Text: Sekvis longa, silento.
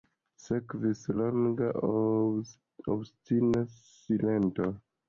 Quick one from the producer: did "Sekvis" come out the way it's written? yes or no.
yes